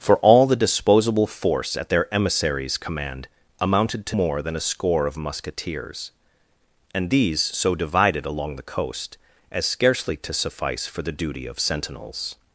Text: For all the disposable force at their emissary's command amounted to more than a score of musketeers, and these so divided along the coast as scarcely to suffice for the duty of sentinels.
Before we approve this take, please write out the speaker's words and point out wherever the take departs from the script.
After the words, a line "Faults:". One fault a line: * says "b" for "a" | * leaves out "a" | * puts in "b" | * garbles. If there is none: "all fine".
For all the disposable force at their emissary's command amounted to more than a score of musketeers, and these so divided along the coast as scarcely to suffice for the duty of sentinels.
Faults:
all fine